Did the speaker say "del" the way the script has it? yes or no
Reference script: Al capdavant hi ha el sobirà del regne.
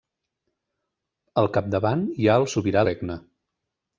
no